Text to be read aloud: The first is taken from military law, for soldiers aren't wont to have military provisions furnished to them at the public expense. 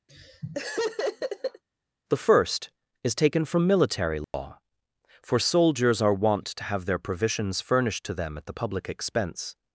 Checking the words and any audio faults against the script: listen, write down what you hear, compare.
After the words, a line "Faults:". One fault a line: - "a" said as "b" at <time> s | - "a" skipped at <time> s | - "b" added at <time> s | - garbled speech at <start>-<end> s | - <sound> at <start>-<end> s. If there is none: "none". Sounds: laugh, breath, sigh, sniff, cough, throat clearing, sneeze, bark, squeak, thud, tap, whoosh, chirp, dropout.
The first is taken from military law, for soldiers are wont to have their provisions furnished to them at the public expense.
Faults:
- laugh at 0.1-1.6 s
- dropout at 4.2-4.3 s
- "aren't" said as "are" at 6.0 s
- "military" said as "their" at 6.9 s